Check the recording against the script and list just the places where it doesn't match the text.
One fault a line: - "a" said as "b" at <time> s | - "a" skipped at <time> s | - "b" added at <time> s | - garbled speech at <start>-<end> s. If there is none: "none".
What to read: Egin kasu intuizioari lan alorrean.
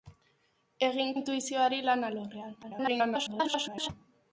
- "kasu" skipped at 1.1 s
- garbled speech at 2.6-3.9 s